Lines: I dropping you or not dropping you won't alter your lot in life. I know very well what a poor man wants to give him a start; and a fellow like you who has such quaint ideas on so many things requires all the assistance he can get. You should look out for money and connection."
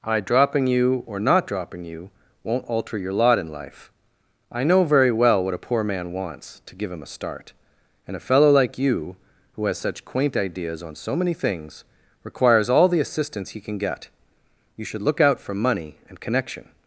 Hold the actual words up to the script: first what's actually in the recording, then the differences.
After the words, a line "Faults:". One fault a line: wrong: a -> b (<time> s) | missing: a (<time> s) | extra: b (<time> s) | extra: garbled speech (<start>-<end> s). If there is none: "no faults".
I dropping you or not dropping you won't alter your lot in life. I know very well what a poor man wants to give him a start; and a fellow like you who has such quaint ideas on so many things requires all the assistance he can get. You should look out for money and connection."
Faults:
no faults